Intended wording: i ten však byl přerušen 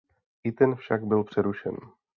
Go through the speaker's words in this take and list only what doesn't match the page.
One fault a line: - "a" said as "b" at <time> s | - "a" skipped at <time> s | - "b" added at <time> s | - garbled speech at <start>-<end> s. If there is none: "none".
none